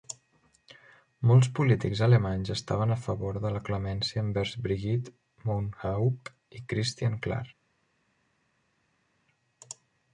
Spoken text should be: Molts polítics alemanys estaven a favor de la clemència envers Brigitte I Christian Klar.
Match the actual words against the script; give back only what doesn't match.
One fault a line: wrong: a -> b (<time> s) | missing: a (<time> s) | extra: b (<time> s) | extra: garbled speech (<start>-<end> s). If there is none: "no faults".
extra: Mohnhaupt (5.5 s)